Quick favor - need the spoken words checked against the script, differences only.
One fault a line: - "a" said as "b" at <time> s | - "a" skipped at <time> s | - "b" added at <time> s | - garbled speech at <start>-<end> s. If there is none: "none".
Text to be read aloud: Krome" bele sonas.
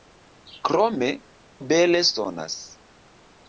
none